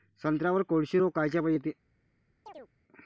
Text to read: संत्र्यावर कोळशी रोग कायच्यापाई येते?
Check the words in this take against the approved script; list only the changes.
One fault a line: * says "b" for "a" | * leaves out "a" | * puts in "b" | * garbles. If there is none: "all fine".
all fine